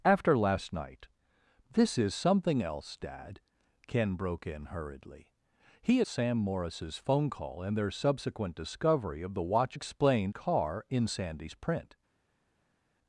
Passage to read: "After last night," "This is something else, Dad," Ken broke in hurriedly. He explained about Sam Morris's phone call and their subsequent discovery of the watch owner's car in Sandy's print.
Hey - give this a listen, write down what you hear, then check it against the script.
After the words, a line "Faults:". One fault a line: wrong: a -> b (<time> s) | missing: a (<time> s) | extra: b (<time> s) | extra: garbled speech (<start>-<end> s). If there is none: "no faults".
"After last night," "This is something else, Dad," Ken broke in hurriedly. He Sam Morris's phone call and their subsequent discovery of the watch explained car in Sandy's print.
Faults:
missing: explained about (6.0 s)
wrong: owner's -> explained (9.7 s)